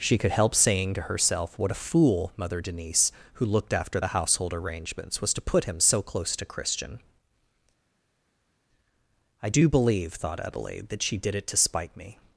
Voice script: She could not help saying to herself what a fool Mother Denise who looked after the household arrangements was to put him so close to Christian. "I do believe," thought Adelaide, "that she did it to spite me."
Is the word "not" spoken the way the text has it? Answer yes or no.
no